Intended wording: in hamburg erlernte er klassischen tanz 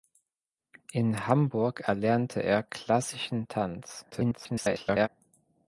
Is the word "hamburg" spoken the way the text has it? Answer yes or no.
yes